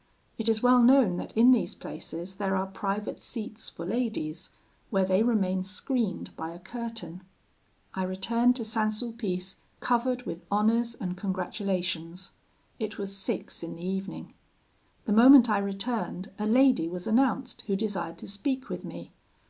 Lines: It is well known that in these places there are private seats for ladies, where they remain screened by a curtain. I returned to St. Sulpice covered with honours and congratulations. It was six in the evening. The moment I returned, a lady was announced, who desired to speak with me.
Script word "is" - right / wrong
right